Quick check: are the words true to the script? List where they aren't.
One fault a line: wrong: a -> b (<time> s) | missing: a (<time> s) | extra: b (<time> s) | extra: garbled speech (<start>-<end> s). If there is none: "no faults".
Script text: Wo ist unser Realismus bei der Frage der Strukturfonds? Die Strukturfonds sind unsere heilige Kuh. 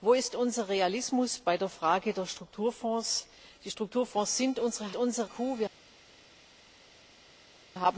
wrong: heilige -> unser (5.0 s)